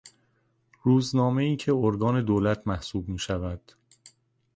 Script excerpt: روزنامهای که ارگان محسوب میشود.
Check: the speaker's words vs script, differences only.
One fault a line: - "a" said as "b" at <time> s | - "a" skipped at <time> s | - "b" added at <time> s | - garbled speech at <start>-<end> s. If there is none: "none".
- "دولت" added at 2.2 s